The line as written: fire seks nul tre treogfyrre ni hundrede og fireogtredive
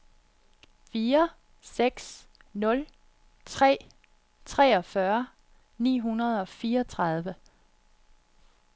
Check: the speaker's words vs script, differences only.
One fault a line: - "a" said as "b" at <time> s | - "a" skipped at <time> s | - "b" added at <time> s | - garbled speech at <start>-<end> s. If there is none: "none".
none